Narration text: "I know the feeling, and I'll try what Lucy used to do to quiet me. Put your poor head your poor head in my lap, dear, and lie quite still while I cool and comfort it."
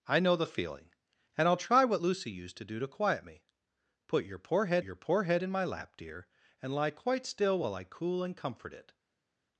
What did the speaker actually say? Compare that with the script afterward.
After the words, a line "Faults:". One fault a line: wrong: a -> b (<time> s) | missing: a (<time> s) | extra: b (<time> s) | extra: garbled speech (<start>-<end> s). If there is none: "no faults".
"I know the feeling, and I'll try what Lucy used to do to quiet me. Put your poor head your poor head in my lap, dear, and lie quite still while I cool and comfort it."
Faults:
no faults